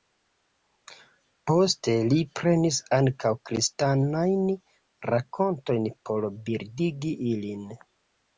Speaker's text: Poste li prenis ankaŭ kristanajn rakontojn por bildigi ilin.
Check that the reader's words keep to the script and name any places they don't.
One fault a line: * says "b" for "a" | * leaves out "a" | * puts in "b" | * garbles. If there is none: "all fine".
all fine